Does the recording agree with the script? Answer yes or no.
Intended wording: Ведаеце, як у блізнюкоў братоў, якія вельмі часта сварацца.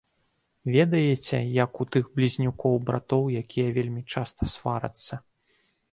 no